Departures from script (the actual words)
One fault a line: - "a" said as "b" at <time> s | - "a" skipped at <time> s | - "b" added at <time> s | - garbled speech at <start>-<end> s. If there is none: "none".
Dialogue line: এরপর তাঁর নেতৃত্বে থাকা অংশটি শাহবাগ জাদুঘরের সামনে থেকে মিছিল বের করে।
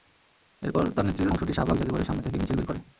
- "থাকা" skipped at 1.3 s